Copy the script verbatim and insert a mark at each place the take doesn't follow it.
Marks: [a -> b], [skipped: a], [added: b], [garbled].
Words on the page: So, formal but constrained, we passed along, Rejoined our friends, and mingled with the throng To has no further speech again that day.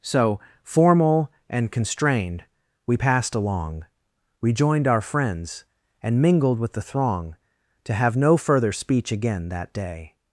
So, formal [but -> and] constrained, we passed along, Rejoined our friends, and mingled with the throng To [has -> have] no further speech again that day.